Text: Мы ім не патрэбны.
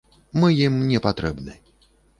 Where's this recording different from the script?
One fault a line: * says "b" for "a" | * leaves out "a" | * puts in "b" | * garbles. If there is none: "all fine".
all fine